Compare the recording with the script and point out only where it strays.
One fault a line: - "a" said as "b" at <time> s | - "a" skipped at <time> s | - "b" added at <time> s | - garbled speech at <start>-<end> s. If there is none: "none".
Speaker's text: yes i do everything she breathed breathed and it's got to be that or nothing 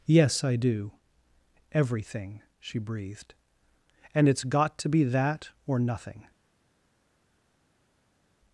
- "breathed" skipped at 3.3 s